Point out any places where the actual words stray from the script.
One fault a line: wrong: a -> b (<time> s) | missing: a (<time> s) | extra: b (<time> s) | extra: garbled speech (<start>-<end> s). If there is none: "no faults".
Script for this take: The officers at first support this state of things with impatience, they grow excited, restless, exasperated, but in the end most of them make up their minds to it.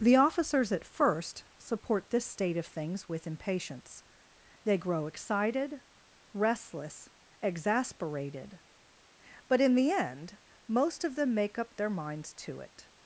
no faults